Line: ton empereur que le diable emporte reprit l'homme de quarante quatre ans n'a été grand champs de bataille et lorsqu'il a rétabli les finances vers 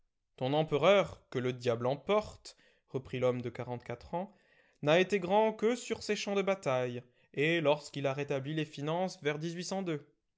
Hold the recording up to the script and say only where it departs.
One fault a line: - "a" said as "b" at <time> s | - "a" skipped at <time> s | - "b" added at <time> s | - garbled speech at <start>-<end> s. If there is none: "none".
- "que sur ses" added at 5.5 s